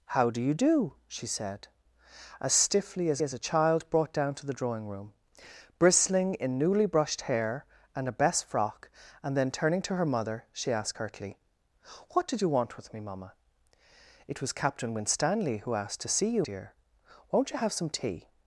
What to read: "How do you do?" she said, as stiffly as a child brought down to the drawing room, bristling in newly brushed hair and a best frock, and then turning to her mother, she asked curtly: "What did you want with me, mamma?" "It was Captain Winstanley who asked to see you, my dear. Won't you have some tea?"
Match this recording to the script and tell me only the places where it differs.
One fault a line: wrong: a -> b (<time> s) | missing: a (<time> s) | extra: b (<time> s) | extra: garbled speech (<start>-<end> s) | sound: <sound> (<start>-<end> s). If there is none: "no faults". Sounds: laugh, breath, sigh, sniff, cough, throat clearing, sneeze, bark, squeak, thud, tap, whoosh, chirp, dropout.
extra: as (3.2 s)
missing: my (16.4 s)